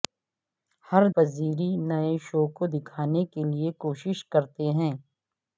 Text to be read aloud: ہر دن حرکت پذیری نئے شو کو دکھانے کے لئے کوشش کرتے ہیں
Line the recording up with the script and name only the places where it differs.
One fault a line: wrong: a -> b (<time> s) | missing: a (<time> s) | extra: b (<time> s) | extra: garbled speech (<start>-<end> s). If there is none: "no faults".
missing: دن حرکت (1.0 s)